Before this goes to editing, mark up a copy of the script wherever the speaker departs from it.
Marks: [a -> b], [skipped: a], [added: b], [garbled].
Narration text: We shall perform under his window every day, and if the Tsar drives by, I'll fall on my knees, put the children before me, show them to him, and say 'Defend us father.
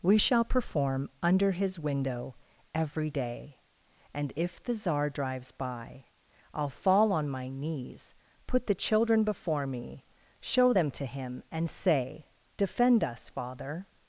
We shall perform under his window every day, and if the Tsar drives by, I'll fall on my knees, put the children before me, show them to him, and say 'Defend us father.